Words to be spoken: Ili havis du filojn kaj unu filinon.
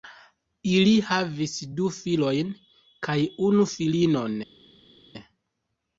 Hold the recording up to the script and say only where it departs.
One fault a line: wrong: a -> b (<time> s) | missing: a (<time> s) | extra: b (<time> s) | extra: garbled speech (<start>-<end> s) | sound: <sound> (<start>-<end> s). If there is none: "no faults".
no faults